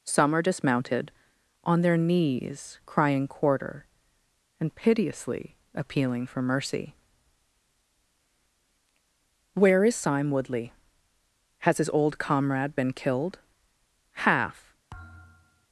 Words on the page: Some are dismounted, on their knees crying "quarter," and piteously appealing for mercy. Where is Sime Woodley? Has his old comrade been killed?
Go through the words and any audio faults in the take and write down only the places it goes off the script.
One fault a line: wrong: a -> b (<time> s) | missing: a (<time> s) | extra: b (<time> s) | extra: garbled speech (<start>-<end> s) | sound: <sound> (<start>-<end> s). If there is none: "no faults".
extra: Half (14.2 s)
sound: thud (14.9-15.7 s)